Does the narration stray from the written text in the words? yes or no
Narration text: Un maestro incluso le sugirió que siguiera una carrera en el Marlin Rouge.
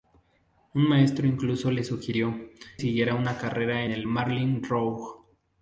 yes